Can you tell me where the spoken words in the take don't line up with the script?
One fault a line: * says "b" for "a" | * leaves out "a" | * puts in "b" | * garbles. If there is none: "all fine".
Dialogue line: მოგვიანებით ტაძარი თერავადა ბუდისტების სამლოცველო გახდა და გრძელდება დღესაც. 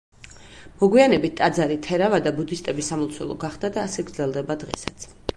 * puts in "ასე"